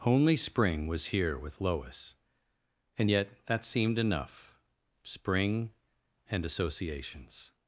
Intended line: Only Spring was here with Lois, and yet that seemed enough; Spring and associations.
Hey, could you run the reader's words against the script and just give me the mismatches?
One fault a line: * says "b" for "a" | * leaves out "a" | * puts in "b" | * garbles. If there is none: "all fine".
all fine